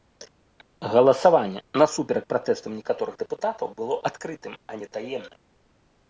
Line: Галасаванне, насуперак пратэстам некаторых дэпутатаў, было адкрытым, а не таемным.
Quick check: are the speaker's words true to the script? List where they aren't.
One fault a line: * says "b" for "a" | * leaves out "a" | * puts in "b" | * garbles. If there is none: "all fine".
all fine